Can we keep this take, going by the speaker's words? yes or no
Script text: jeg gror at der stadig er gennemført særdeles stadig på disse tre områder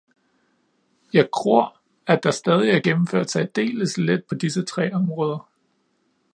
no